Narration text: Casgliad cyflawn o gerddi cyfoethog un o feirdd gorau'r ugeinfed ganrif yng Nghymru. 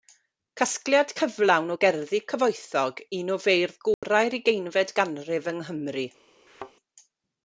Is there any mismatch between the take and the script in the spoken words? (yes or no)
no